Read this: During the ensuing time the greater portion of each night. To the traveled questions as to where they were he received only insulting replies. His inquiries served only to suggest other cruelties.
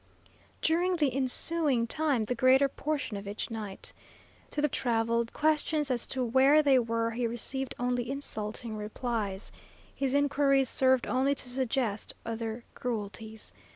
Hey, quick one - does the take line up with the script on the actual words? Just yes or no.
yes